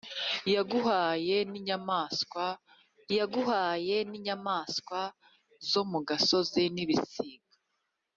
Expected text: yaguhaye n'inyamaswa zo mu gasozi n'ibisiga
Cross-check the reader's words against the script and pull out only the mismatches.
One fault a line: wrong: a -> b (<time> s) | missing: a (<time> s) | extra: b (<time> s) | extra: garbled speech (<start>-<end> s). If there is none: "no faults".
extra: yaguhaye n'inyamaswa (3.2 s)